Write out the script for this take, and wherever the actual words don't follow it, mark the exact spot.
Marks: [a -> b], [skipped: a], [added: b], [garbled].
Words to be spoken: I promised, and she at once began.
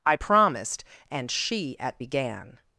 I promised, and she at [skipped: once] began.